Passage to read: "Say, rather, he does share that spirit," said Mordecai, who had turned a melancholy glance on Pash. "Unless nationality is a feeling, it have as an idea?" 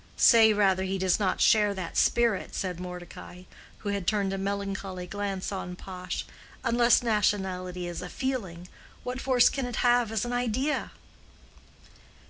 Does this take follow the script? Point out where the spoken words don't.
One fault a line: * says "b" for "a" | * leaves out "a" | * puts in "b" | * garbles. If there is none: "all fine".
* puts in "not"
* puts in "what force can"